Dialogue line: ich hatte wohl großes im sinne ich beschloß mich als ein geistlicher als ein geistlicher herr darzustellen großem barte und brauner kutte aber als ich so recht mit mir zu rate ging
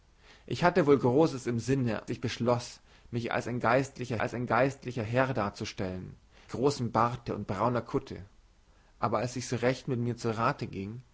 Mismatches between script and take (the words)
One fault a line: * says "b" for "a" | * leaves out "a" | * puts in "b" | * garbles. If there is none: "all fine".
all fine